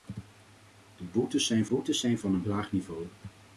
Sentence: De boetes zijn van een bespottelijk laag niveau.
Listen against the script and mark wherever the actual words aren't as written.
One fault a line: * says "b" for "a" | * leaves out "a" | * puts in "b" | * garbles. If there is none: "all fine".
* puts in "boetes zijn"
* leaves out "bespottelijk"